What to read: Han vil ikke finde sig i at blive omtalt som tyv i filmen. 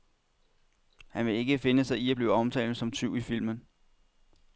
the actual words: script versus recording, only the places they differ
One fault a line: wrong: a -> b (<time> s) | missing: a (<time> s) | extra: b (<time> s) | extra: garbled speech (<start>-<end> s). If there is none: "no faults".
no faults